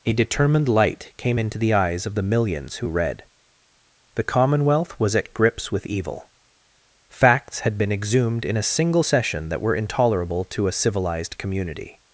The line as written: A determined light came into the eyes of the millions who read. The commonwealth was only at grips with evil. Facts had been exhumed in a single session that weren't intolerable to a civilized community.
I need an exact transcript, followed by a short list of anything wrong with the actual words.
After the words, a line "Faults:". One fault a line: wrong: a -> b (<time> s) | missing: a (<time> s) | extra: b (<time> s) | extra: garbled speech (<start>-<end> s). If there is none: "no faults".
A determined light came into the eyes of the millions who read. The commonwealth was at grips with evil. Facts had been exhumed in a single session that were intolerable to a civilized community.
Faults:
missing: only (5.1 s)
wrong: weren't -> were (9.6 s)